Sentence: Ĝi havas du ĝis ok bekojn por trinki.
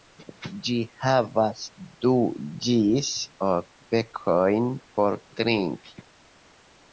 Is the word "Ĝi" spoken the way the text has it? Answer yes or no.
yes